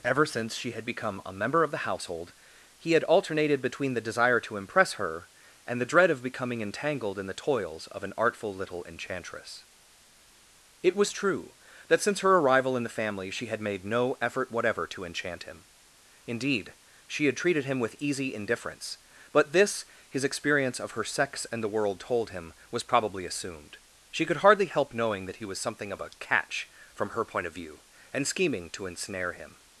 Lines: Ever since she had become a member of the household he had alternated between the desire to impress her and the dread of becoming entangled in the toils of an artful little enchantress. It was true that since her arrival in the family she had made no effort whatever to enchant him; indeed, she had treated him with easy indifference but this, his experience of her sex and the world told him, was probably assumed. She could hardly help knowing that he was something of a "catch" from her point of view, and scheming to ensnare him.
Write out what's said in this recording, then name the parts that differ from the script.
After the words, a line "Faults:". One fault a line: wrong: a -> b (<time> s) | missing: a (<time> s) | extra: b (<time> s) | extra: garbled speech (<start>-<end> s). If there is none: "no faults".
Ever since she had become a member of the household he had alternated between the desire to impress her and the dread of becoming entangled in the toils of an artful little enchantress. It was true that since her arrival in the family she had made no effort whatever to enchant him; indeed, she had treated him with easy indifference but this, his experience of her sex and the world told him, was probably assumed. She could hardly help knowing that he was something of a "catch" from her point of view, and scheming to ensnare him.
Faults:
no faults